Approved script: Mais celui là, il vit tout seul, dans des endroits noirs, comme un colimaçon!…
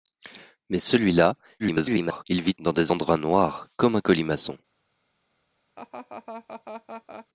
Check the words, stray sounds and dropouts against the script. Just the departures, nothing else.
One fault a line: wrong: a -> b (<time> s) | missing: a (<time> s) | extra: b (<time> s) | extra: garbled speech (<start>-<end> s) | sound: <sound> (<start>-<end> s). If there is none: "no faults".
extra: garbled speech (1.6-2.2 s)
missing: tout seul (2.5 s)
sound: laugh (5.8-7.3 s)